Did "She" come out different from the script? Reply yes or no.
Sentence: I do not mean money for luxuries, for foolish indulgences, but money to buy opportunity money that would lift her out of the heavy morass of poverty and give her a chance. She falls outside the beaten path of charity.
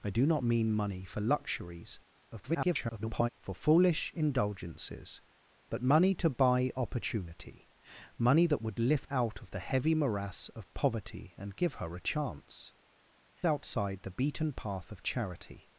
yes